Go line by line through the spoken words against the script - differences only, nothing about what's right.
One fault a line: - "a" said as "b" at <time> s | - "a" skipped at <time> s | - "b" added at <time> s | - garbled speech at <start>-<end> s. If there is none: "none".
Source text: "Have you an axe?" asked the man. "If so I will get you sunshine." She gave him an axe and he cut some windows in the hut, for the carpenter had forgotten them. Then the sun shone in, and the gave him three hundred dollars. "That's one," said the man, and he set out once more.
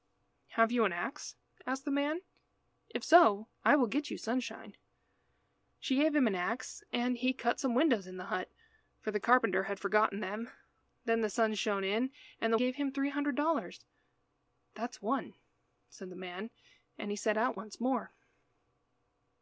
none